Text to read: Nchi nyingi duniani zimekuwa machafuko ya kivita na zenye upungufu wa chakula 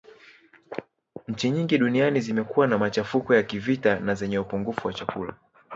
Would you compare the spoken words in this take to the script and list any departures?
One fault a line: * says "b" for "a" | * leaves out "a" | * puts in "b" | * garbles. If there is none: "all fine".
* puts in "na"